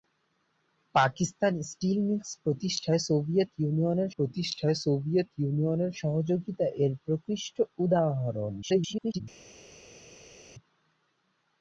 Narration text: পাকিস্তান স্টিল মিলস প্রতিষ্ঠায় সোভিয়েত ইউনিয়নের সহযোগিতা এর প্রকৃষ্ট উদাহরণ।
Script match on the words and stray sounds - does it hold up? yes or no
no